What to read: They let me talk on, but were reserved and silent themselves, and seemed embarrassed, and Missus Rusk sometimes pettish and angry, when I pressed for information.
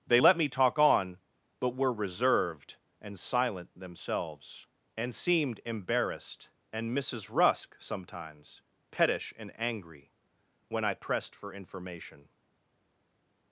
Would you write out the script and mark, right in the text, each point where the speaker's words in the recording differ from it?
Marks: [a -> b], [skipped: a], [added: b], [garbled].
They let me talk on, but were reserved and silent themselves, and seemed embarrassed, and Missus Rusk sometimes pettish and angry, when I pressed for information.